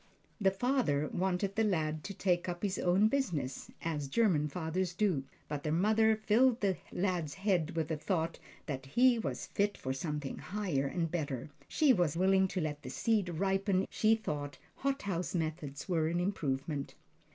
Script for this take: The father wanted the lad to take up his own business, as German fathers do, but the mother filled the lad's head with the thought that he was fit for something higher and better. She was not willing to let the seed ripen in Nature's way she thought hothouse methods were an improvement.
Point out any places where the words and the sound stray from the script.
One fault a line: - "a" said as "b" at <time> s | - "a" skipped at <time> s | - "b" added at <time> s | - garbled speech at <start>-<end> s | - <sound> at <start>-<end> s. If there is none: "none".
- "not" skipped at 12.2 s
- "in Nature's way" skipped at 13.8 s